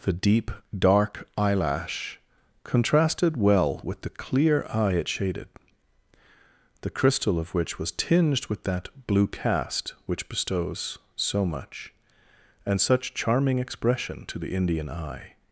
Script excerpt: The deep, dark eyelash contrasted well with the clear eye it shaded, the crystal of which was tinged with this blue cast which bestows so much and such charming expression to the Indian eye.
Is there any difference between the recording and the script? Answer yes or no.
yes